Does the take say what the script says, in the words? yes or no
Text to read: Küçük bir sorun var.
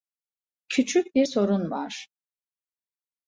yes